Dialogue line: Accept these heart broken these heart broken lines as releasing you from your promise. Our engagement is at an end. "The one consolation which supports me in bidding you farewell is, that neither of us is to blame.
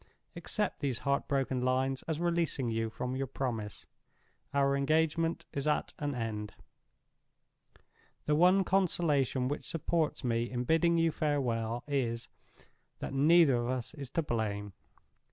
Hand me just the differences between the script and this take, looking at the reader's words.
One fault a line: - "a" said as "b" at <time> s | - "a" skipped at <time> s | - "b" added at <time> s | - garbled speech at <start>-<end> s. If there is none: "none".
- "these heart broken" skipped at 1.6 s